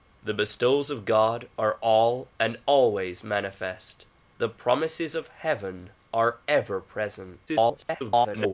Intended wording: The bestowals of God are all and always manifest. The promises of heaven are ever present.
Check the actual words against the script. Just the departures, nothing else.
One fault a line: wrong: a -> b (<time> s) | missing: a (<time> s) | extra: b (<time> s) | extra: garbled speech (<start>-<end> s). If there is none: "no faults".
extra: garbled speech (7.5-8.5 s)